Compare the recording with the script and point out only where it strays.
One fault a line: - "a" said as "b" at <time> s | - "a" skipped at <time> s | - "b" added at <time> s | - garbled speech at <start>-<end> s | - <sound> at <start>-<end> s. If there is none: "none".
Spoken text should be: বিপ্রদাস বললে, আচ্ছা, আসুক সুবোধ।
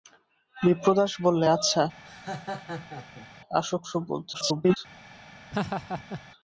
- laugh at 2.0-3.3 s
- garbled speech at 4.3-4.8 s
- laugh at 5.5-6.2 s